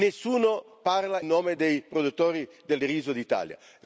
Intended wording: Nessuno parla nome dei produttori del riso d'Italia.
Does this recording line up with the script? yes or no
yes